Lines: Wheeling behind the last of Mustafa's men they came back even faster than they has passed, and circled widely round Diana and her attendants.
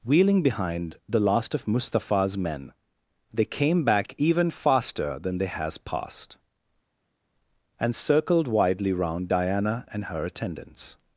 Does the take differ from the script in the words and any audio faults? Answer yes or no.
no